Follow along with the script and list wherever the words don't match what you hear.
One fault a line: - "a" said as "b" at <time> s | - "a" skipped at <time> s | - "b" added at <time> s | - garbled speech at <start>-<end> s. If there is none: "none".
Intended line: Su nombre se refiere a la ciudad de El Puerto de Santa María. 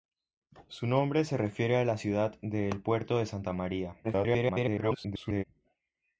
- garbled speech at 4.0-5.4 s